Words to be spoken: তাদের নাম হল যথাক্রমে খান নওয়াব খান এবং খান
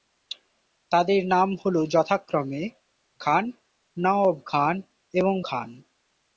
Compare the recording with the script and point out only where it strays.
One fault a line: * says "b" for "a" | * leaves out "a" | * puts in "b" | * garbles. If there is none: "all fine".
all fine